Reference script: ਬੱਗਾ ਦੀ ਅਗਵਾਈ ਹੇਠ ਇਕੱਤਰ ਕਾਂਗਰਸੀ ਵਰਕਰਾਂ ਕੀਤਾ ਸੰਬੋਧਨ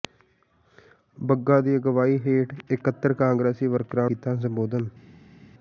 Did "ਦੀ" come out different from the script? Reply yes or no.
no